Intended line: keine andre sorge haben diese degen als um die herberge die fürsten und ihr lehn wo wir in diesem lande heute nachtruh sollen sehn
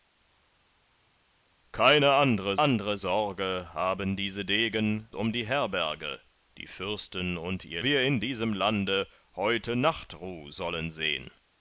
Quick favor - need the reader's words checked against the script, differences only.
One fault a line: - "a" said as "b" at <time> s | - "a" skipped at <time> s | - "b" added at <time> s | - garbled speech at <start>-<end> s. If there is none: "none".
- "andre" added at 2.6 s
- "als" skipped at 5.1 s
- "lehn wo" skipped at 7.8 s